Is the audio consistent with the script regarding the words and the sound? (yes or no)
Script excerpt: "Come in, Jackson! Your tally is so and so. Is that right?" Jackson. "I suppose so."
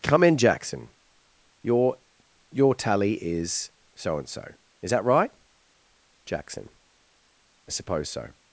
no